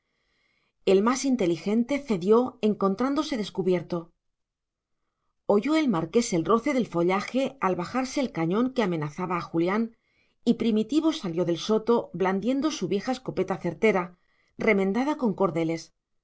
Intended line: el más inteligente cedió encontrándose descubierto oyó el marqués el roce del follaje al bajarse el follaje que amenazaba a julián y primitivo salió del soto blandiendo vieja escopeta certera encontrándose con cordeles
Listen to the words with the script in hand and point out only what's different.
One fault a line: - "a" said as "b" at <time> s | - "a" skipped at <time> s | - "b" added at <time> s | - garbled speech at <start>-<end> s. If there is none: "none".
- "follaje" said as "cañón" at 8.3 s
- "su" added at 12.7 s
- "encontrándose" said as "remendada" at 14.6 s